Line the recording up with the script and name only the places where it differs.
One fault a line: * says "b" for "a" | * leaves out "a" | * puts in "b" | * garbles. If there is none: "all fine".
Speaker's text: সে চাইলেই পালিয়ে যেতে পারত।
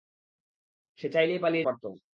* leaves out "যেতে"